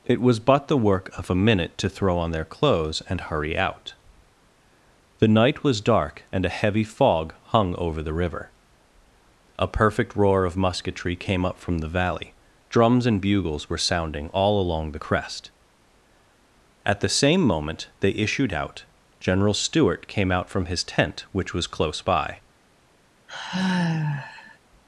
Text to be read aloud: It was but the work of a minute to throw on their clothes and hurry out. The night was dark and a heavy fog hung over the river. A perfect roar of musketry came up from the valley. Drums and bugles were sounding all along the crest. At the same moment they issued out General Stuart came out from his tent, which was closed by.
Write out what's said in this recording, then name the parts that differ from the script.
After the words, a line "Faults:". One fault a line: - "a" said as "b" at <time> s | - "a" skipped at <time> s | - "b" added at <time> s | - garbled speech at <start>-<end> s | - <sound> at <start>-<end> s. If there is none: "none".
It was but the work of a minute to throw on their clothes and hurry out. The night was dark and a heavy fog hung over the river. A perfect roar of musketry came up from the valley. Drums and bugles were sounding all along the crest. At the same moment they issued out General Stuart came out from his tent, which was close by.
Faults:
- "closed" said as "close" at 21.7 s
- sigh at 23.3-24.6 s